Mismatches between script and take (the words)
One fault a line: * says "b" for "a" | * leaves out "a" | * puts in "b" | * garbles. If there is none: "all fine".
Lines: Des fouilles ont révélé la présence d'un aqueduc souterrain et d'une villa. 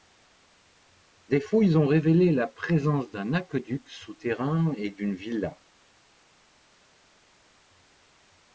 all fine